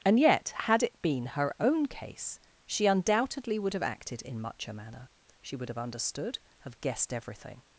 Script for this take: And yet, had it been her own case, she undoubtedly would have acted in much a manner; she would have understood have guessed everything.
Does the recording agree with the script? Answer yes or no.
yes